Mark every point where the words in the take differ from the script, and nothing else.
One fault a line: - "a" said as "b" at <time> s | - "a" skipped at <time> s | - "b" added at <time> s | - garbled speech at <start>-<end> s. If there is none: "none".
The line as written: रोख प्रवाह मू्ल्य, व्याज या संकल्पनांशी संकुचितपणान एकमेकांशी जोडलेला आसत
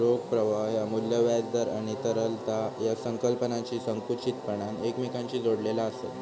- "ह्या" added at 0.7 s
- "दर आणि तरलता" added at 1.5 s